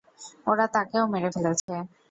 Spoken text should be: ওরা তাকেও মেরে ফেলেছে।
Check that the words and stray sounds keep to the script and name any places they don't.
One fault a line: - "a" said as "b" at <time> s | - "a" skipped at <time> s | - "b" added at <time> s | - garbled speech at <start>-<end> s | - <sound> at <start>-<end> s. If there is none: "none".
- dropout at 1.6-1.7 s